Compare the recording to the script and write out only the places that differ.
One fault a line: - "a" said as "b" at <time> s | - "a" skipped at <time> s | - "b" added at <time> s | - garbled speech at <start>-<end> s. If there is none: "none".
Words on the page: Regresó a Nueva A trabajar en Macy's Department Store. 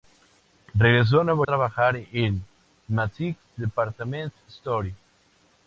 none